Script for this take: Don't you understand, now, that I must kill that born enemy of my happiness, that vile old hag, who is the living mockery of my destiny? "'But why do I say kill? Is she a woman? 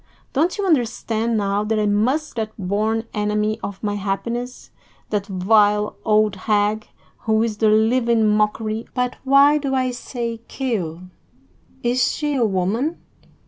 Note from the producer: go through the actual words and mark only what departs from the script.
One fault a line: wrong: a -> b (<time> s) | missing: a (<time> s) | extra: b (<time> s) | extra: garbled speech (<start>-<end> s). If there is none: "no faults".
missing: kill (2.4 s)
missing: of my destiny (8.9 s)